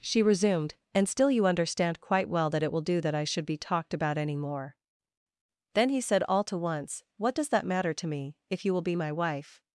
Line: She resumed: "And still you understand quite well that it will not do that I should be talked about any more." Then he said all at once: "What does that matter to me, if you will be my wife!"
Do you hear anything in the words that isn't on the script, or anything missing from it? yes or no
yes